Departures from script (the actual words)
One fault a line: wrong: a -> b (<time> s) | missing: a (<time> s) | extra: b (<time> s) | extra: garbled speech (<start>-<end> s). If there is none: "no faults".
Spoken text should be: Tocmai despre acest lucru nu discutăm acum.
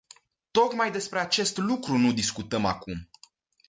no faults